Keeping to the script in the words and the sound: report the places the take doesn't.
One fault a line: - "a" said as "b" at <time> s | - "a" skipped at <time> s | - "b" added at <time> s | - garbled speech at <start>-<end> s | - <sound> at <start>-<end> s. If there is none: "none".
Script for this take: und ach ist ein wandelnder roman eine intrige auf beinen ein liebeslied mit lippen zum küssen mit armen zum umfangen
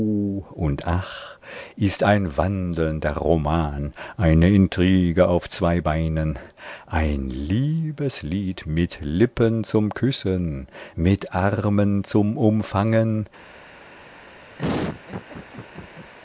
- "zwei" added at 5.5 s
- laugh at 14.6-16.1 s